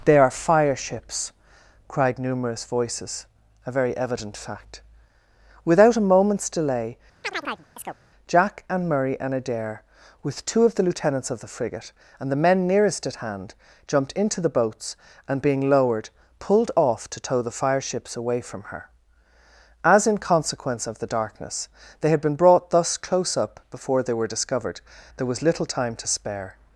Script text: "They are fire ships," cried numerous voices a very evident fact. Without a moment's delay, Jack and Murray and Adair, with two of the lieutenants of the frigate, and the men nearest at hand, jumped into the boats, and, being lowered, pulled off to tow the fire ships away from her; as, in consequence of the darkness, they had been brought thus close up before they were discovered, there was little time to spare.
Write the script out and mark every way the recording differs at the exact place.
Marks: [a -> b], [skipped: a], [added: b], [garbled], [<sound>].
"They are fire ships," cried numerous voices a very evident fact. Without a moment's delay, [chirp] Jack and Murray and Adair, with two of the lieutenants of the frigate, and the men nearest at hand, jumped into the boats, and, being lowered, pulled off to tow the fire ships away from her; as, in consequence of the darkness, they had been brought thus close up before they were discovered, there was little time to spare.